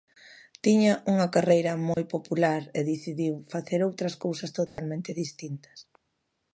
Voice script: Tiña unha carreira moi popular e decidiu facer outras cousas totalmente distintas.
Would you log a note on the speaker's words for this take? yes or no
no